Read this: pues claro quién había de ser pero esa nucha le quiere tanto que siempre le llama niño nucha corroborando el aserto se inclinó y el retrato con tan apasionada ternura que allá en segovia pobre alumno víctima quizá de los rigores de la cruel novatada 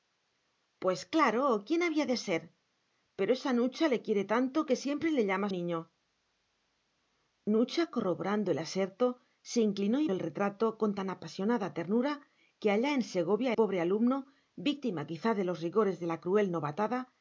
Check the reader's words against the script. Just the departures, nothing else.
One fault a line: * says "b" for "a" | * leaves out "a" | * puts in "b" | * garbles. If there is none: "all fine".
all fine